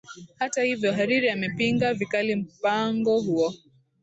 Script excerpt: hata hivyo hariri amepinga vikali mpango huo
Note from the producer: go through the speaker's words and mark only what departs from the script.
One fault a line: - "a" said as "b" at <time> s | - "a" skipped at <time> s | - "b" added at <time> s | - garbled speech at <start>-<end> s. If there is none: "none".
none